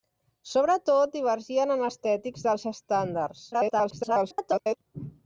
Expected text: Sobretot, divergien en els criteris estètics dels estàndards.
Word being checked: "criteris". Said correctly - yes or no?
no